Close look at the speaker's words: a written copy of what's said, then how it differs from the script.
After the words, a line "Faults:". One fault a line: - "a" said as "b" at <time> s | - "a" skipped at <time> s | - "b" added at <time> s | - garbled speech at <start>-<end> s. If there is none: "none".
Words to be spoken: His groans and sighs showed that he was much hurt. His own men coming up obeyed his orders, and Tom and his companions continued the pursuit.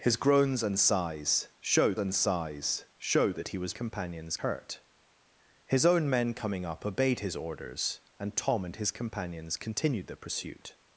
His groans and sighs showed and sighs showed that he was companions hurt. His own men coming up obeyed his orders, and Tom and his companions continued the pursuit.
Faults:
- "and sighs showed" added at 2.0 s
- "much" said as "companions" at 3.7 s